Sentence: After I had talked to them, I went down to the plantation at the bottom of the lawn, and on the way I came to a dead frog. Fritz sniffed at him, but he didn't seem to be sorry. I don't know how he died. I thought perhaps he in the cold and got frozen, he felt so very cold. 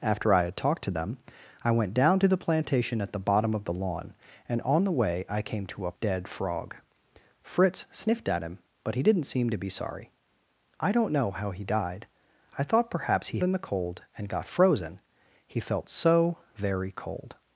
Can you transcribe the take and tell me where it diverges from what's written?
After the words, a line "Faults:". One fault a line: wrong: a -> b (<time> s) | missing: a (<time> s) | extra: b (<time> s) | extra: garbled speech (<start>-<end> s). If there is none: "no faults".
After I had talked to them, I went down to the plantation at the bottom of the lawn, and on the way I came to a dead frog. Fritz sniffed at him, but he didn't seem to be sorry. I don't know how he died. I thought perhaps he in the cold and got frozen, he felt so very cold.
Faults:
no faults